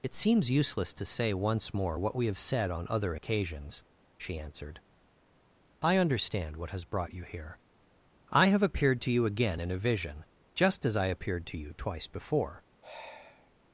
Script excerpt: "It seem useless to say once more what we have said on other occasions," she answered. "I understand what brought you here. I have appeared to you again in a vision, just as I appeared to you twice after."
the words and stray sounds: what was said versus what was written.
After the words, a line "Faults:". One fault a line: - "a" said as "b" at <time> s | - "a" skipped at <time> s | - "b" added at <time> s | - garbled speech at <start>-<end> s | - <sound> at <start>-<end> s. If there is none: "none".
"It seems useless to say once more what we have said on other occasions," she answered. "I understand what has brought you here. I have appeared to you again in a vision, just as I appeared to you twice before."
Faults:
- "seem" said as "seems" at 0.1 s
- "has" added at 6.7 s
- "after" said as "before" at 12.1 s
- sigh at 12.8-13.5 s